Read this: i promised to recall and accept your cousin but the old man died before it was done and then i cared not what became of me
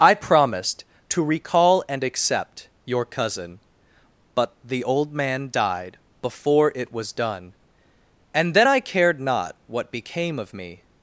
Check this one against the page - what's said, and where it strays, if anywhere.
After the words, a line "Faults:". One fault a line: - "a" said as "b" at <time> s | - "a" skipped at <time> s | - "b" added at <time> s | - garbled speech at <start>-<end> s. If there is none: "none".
i promised to recall and accept your cousin but the old man died before it was done and then i cared not what became of me
Faults:
none